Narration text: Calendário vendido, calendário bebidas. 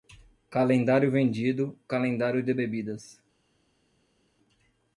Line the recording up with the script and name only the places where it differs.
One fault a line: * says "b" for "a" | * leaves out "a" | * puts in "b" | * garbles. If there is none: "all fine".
* puts in "de"